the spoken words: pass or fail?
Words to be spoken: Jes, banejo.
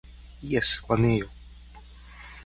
pass